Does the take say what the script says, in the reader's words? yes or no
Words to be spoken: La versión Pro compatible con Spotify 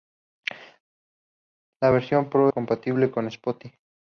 yes